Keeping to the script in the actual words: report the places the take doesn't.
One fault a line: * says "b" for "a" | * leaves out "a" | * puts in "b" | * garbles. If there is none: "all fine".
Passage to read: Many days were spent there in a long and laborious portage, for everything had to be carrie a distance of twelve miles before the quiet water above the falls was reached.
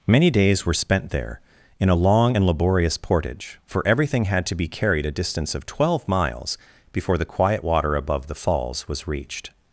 * says "carried" for "carrie"